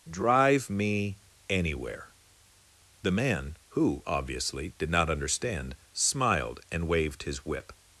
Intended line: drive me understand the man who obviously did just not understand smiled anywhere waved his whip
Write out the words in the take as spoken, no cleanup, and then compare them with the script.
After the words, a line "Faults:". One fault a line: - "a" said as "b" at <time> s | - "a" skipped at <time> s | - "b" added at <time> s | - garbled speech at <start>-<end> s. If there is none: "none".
drive me anywhere the man who obviously did not understand smiled and waved his whip
Faults:
- "understand" said as "anywhere" at 1.5 s
- "just" skipped at 4.9 s
- "anywhere" said as "and" at 6.7 s